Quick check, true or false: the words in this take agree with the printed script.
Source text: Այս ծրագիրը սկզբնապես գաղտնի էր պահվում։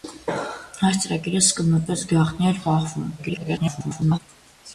false